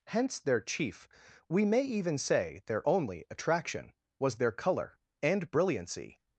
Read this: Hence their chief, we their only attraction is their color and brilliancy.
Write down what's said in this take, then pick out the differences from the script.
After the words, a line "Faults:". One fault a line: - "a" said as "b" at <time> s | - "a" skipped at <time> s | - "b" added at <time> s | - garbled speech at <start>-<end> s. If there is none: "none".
Hence their chief, we may even say their only attraction was their color and brilliancy.
Faults:
- "may even say" added at 1.6 s
- "is" said as "was" at 4.2 s